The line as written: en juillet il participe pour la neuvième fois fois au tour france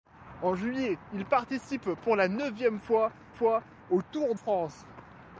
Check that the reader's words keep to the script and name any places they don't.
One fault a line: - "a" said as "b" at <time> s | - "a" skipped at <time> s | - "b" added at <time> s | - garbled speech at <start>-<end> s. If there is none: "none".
none